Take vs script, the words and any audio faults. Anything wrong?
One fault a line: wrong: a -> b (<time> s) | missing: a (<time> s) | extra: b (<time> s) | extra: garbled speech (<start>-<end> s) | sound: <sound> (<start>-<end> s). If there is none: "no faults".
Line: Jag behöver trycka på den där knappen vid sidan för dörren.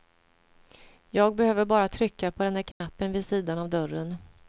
extra: bara (1.6 s)
sound: dropout (2.7-2.8 s)
wrong: för -> av (3.6 s)